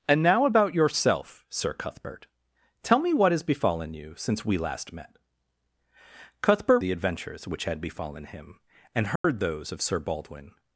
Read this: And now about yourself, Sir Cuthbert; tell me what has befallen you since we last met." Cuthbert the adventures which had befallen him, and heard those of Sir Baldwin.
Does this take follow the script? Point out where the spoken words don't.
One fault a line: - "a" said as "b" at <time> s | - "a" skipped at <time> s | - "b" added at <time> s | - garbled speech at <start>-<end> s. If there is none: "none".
none